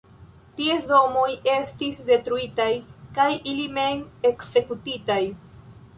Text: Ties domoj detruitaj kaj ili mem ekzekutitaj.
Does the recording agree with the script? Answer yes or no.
no